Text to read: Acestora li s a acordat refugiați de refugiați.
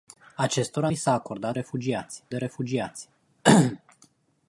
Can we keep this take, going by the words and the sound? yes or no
yes